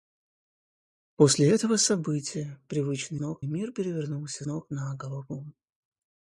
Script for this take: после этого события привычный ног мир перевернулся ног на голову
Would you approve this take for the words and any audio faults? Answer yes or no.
yes